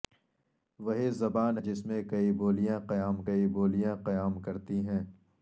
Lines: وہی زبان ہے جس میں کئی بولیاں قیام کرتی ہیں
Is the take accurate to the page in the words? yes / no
no